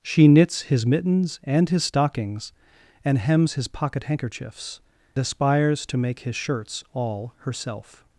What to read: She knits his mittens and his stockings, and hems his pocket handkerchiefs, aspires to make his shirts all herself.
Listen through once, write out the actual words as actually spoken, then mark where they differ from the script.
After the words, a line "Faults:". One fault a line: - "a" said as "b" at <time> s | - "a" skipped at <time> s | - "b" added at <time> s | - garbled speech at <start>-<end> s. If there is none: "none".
She knits his mittens and his stockings, and hems his pocket handkerchiefs, aspires to make his shirts all herself.
Faults:
none